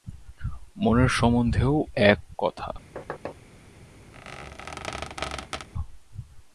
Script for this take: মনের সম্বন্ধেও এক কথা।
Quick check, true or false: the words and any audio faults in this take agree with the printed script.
false